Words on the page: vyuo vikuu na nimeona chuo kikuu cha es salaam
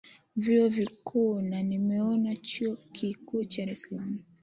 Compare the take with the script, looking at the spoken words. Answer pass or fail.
pass